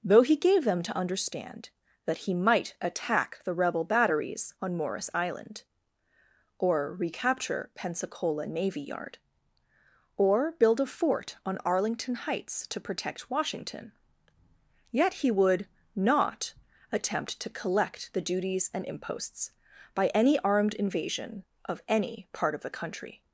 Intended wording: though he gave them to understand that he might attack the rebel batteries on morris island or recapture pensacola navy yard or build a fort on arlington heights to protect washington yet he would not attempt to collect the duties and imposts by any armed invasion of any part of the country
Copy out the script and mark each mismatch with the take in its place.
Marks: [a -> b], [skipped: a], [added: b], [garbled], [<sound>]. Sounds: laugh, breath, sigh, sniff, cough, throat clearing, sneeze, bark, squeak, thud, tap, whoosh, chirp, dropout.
though he gave them to understand that he might attack the rebel batteries on morris island or recapture pensacola navy yard or build a fort on arlington heights to protect washington yet he would not attempt to collect the duties and imposts by any armed invasion of any part of the country